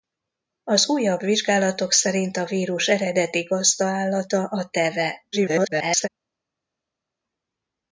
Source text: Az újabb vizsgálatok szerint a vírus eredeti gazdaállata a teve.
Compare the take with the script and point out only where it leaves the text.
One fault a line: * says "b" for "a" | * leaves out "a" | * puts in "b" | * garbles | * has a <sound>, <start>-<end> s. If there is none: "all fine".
* garbles